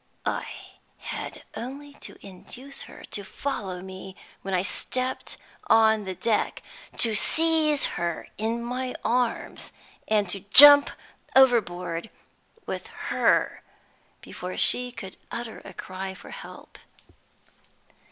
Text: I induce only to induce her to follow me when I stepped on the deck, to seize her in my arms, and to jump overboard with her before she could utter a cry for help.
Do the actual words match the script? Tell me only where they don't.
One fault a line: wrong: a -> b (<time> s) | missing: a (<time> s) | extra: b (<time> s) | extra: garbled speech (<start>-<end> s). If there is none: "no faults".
wrong: induce -> had (1.0 s)